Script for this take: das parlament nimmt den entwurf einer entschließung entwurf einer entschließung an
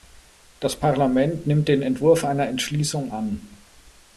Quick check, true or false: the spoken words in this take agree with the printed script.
false